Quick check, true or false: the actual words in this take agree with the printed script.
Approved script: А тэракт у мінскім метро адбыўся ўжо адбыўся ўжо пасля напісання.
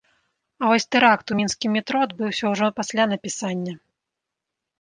false